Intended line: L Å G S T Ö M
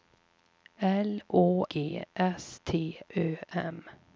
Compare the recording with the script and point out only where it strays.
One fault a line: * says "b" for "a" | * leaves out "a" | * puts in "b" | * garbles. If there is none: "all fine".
all fine